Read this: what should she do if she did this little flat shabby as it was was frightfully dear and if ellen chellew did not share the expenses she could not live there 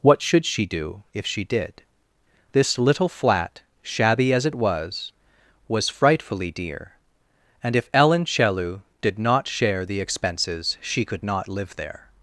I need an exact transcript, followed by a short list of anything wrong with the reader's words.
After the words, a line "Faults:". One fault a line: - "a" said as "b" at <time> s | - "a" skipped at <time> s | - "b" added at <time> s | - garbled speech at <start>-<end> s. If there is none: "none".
what should she do if she did this little flat shabby as it was was frightfully dear and if ellen chellew did not share the expenses she could not live there
Faults:
none